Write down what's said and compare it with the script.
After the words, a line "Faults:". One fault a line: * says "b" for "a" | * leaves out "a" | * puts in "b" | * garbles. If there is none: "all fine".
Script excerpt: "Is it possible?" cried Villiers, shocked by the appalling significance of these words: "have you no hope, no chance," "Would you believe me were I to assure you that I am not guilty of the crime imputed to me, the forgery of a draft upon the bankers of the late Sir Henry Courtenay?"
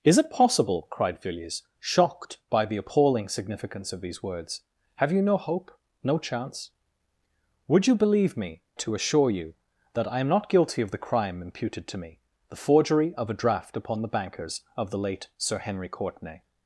"Is it possible?" cried Villiers, shocked by the appalling significance of these words: "have you no hope, no chance," "Would you believe me to assure you that I am not guilty of the crime imputed to me, the forgery of a draft upon the bankers of the late Sir Henry Courtenay?"
Faults:
* leaves out "were I"